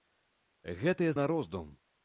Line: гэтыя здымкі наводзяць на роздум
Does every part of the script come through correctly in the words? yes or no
no